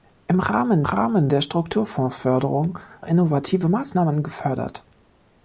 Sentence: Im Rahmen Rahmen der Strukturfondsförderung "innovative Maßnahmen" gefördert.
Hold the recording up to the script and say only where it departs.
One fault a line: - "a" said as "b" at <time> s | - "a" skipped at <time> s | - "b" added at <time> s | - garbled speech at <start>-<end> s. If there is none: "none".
none